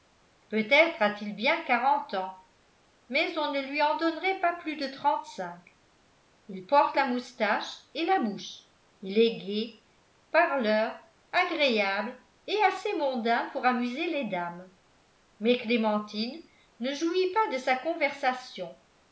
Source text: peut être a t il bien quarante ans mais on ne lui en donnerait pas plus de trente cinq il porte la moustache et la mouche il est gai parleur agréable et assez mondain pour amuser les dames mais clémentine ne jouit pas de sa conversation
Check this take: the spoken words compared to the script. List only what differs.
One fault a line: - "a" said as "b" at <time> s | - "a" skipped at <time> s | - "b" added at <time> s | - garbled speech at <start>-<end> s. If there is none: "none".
none